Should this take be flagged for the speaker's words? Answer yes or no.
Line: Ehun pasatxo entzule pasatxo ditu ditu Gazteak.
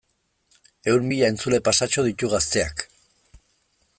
yes